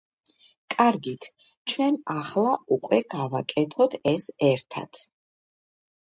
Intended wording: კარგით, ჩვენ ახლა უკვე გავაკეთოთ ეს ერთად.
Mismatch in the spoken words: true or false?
false